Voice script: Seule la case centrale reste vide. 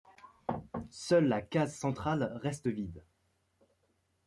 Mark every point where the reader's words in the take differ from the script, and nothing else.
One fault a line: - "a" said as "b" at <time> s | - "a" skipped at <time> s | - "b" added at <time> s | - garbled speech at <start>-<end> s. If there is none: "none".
none